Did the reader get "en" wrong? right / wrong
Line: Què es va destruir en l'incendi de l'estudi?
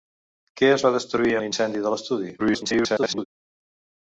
wrong